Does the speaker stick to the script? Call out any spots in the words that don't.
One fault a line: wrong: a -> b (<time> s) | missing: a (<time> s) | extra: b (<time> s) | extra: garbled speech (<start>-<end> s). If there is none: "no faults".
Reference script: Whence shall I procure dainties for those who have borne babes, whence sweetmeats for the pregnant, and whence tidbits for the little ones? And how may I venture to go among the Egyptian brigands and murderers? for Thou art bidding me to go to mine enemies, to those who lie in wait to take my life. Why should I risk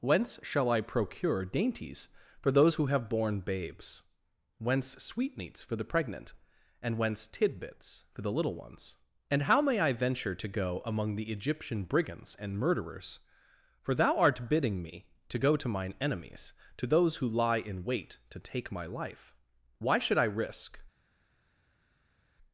no faults